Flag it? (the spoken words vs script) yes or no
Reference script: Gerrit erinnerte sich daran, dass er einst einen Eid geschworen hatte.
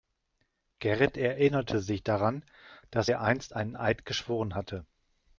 no